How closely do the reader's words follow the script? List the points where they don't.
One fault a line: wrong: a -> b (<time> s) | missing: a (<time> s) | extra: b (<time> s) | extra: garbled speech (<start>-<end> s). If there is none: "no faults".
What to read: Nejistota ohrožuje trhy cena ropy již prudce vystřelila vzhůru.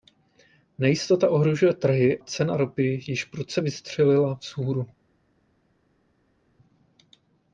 no faults